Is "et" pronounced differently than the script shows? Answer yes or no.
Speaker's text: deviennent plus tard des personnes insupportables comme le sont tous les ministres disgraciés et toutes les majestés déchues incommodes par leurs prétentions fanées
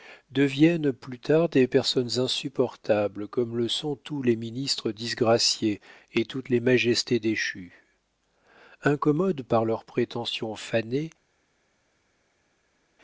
no